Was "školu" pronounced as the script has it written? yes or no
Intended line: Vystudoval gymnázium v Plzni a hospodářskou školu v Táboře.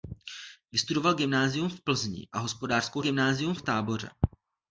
no